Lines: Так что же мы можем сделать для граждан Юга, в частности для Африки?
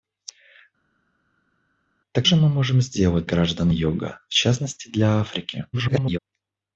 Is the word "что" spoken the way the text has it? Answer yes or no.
no